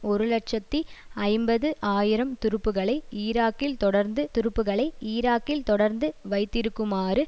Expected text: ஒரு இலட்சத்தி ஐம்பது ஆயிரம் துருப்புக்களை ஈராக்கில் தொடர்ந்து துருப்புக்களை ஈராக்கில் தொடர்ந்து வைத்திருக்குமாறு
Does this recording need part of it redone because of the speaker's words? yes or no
no